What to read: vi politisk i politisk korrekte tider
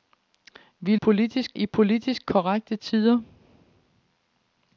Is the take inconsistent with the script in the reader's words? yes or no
no